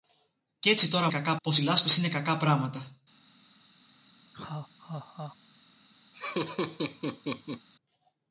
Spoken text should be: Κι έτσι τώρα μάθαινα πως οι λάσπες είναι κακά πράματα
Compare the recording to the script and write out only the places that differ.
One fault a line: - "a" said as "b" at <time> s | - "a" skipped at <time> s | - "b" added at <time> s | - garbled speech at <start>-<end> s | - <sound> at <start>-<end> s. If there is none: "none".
- "μάθαινα" said as "κακά" at 1.1 s
- laugh at 4.3-5.4 s
- laugh at 6.1-7.7 s